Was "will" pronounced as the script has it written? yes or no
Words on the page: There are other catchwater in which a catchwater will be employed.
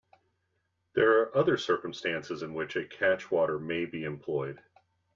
no